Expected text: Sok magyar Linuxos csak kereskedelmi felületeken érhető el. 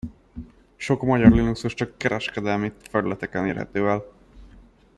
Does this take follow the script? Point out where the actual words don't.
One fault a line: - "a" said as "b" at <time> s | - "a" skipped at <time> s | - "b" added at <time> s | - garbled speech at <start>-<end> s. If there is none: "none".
none